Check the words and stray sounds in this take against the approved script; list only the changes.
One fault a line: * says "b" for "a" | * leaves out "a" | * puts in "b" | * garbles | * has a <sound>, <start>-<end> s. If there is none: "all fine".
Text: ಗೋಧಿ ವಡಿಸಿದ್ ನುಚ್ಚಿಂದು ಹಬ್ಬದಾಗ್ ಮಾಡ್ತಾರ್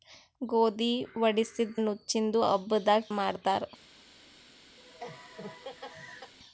* has a laugh, 4.8-6.3 s